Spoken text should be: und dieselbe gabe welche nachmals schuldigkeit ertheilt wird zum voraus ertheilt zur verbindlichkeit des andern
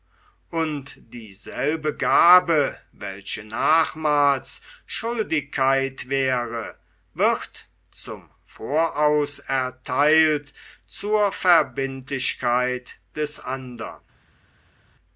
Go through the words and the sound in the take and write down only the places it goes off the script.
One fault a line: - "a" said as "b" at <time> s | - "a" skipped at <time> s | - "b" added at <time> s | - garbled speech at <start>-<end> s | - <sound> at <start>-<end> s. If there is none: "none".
- "ertheilt" said as "wäre" at 6.1 s